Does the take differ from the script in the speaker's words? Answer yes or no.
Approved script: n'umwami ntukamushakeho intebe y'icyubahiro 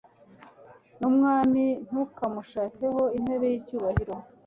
no